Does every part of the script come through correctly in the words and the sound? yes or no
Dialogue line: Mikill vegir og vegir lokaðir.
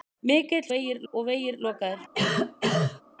no